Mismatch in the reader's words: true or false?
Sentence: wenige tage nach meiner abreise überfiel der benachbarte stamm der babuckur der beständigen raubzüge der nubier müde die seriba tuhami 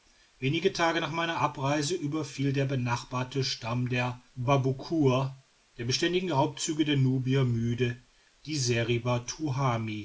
false